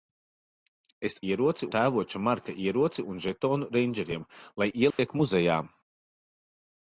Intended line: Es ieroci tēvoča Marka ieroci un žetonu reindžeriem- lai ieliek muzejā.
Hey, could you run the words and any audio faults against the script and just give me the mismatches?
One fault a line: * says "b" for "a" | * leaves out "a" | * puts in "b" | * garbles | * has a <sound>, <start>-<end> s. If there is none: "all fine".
* has a dropout, 4.9-5.0 s